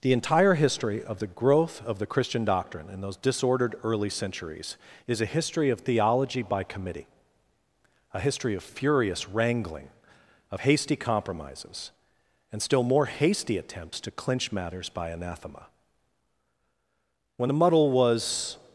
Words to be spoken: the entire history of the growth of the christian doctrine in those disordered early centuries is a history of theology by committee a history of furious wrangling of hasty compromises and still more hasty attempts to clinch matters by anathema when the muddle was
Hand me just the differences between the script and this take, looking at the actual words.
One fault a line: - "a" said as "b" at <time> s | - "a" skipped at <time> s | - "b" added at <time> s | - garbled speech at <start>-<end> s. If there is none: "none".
none